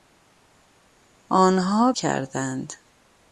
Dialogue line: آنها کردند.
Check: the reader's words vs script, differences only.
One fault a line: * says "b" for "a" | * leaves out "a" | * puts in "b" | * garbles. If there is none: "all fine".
all fine